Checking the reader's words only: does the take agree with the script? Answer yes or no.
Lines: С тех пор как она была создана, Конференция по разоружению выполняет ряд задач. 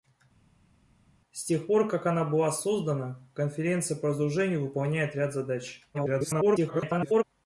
no